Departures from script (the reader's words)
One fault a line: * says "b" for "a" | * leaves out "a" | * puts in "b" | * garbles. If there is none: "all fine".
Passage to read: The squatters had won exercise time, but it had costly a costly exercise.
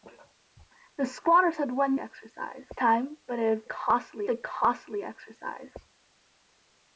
all fine